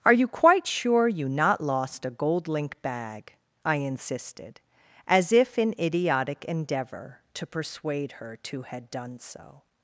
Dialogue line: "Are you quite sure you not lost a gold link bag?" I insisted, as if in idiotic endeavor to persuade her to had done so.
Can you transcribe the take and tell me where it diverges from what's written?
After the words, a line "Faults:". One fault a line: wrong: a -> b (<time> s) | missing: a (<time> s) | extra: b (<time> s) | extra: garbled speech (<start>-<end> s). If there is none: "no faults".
"Are you quite sure you not lost a gold link bag?" I insisted, as if in idiotic endeavor to persuade her to had done so.
Faults:
no faults